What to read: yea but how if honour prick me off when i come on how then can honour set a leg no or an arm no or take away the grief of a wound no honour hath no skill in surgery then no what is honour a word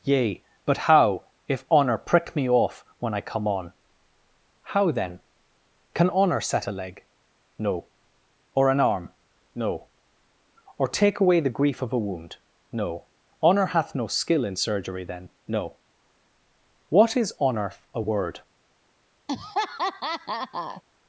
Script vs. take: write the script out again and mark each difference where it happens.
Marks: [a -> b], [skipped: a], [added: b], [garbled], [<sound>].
yea but how if honour prick me off when i come on how then can honour set a leg no or an arm no or take away the grief of a wound no honour hath no skill in surgery then no what is honour a word [laugh]